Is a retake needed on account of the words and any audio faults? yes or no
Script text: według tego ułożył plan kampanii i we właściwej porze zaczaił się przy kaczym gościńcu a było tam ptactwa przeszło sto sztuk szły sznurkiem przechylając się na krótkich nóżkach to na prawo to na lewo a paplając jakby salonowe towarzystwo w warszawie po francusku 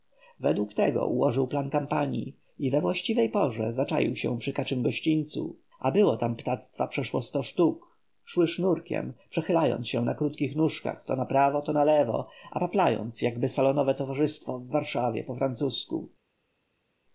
no